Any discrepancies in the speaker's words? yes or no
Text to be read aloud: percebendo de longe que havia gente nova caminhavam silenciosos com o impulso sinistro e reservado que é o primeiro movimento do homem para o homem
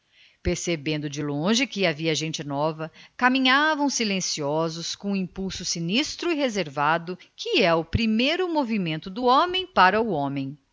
no